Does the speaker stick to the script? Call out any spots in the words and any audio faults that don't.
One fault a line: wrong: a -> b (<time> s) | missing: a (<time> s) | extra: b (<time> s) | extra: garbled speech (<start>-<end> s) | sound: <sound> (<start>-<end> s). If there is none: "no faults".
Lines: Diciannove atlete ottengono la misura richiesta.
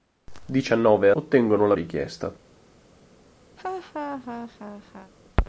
missing: atlete (1.1 s)
missing: misura (1.7 s)
sound: laugh (3.6-5.1 s)